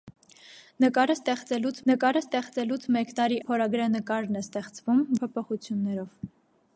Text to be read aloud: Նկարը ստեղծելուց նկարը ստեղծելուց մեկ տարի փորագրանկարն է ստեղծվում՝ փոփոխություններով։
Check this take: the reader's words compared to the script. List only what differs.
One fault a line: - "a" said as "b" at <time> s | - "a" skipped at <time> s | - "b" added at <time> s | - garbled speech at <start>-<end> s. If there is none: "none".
none